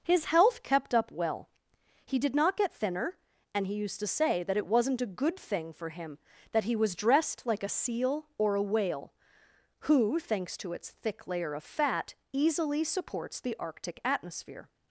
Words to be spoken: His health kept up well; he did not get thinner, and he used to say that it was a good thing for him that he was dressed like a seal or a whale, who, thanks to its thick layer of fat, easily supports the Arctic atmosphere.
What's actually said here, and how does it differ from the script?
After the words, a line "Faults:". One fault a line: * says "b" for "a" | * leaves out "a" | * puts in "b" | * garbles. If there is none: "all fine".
His health kept up well; he did not get thinner, and he used to say that it wasn't a good thing for him that he was dressed like a seal or a whale, who, thanks to its thick layer of fat, easily supports the Arctic atmosphere.
Faults:
* says "wasn't" for "was"